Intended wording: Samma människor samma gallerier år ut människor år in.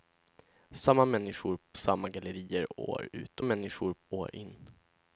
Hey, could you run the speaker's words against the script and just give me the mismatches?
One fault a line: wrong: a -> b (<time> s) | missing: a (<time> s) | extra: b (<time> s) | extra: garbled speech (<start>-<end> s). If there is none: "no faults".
no faults